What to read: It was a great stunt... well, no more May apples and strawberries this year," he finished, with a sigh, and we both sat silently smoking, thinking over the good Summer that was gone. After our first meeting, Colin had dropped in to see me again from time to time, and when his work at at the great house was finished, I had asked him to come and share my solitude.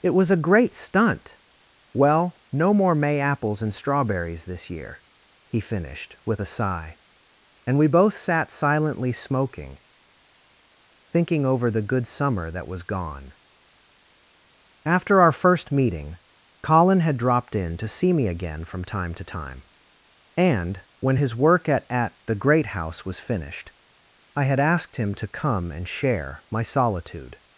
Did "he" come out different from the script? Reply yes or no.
no